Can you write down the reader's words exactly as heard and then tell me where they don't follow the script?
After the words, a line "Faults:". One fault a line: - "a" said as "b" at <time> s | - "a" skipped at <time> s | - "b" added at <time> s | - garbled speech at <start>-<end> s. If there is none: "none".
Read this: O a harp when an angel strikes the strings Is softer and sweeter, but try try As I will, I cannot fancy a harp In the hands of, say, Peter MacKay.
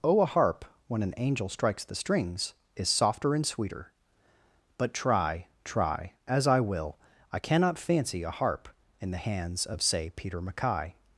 O a harp when an angel strikes the strings Is softer and sweeter, but try try As I will, I cannot fancy a harp In the hands of, say, Peter MacKay.
Faults:
none